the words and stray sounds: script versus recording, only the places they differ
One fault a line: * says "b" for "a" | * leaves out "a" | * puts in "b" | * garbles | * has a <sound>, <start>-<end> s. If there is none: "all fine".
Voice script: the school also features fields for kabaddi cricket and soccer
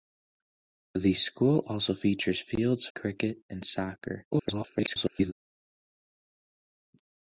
* leaves out "for kabaddi"
* garbles